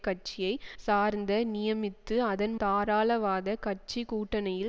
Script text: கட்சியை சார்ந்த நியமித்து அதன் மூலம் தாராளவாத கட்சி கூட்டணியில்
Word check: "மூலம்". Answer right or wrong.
wrong